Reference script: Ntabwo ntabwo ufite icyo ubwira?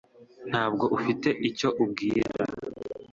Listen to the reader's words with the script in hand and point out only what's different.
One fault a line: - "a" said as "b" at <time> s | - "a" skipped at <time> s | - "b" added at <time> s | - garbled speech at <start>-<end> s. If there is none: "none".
- "ntabwo" skipped at 0.9 s